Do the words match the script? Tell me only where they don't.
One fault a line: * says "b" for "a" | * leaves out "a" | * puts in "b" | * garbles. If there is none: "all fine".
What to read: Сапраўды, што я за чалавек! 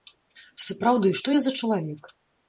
all fine